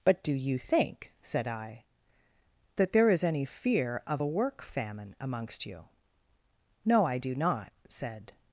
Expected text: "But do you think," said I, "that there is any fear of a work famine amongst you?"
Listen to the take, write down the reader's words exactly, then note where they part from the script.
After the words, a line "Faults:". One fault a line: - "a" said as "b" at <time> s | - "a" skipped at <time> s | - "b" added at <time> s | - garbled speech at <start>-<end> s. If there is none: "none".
"But do you think," said I, "that there is any fear of a work famine amongst you?" "No, I do not," said
Faults:
- "No I do not said" added at 6.8 s